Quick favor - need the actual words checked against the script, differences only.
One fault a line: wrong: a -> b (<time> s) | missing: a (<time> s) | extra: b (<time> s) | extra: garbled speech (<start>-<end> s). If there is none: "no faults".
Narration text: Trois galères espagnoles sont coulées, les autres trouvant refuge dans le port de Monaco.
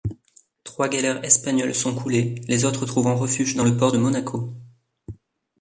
no faults